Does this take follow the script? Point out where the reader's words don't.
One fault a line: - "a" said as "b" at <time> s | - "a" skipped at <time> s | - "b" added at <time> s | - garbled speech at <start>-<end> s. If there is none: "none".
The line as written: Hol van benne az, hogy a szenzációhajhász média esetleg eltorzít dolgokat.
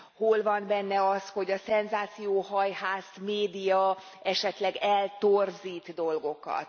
none